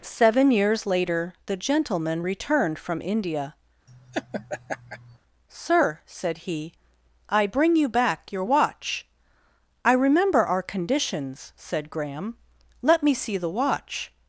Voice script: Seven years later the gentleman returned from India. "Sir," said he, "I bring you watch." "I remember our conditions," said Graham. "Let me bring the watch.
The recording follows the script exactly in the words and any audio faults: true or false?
false